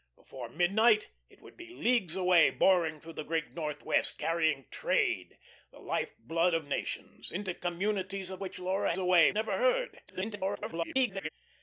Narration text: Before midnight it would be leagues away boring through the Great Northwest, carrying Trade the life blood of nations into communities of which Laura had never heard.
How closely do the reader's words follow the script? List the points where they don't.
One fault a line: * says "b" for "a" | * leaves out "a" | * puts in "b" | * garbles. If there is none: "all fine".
* says "away" for "had"
* garbles